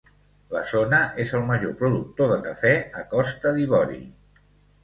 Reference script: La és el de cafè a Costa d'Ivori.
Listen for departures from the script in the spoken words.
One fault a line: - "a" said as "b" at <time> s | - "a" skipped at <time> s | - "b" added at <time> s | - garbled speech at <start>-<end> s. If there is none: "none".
- "zona" added at 0.7 s
- "major productor" added at 1.5 s